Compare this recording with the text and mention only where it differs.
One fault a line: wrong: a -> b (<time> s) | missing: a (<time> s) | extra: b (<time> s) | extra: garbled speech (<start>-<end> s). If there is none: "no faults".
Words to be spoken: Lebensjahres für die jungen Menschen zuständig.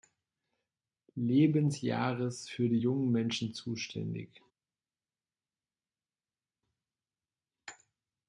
no faults